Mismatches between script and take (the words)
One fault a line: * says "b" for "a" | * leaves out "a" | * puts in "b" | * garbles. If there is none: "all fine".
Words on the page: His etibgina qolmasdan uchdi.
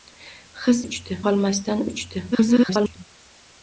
* says "uchdi" for "etibgina"
* garbles